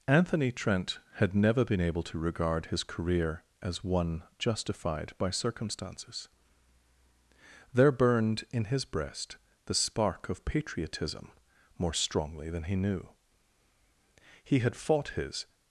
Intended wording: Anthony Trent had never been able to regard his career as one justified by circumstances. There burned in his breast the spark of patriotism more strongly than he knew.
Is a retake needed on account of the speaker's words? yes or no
yes